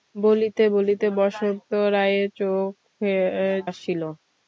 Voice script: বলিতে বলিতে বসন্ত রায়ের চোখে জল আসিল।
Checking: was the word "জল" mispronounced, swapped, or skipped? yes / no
yes